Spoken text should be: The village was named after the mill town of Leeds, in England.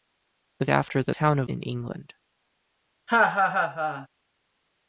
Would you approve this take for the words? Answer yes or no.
no